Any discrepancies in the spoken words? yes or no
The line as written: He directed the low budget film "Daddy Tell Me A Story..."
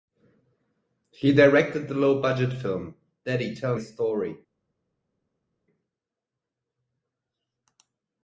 yes